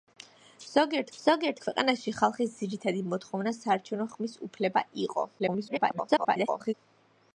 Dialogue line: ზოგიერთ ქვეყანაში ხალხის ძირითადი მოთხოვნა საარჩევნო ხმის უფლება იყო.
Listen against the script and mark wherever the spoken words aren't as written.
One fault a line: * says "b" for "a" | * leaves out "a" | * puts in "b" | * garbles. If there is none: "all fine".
* puts in "ზოგიერთ"
* garbles